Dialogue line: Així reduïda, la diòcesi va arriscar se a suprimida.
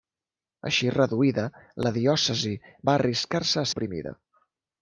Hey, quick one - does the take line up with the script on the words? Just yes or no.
yes